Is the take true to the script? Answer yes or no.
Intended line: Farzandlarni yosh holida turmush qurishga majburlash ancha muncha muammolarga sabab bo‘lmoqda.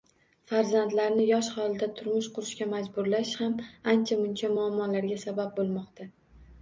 no